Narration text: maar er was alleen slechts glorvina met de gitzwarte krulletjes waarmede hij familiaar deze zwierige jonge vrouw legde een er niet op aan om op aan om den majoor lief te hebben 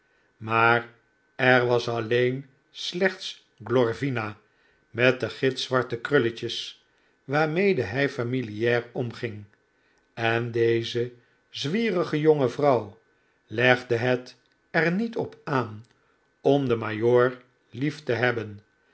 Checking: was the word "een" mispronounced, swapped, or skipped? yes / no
yes